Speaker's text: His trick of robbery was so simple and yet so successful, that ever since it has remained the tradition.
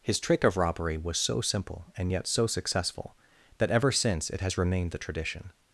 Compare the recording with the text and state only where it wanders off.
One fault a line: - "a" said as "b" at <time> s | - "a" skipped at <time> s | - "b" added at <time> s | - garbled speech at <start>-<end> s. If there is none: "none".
none